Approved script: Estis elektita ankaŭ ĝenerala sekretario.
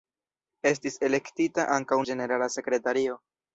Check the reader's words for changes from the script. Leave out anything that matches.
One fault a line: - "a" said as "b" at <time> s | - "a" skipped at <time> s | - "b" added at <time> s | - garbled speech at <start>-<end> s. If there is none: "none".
none